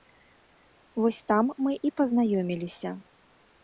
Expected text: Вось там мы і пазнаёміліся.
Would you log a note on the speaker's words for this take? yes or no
no